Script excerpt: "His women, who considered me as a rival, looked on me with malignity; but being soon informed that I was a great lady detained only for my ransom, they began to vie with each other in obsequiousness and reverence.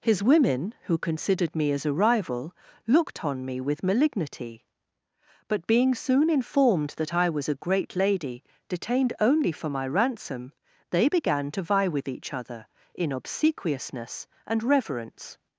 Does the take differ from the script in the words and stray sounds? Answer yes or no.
no